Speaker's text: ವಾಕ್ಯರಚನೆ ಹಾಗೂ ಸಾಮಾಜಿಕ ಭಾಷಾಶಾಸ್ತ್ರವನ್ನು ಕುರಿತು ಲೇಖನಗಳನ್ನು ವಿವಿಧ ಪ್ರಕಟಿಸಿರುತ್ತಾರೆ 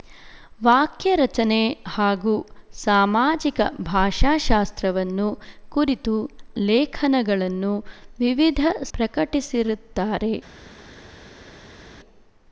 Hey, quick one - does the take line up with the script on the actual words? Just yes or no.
yes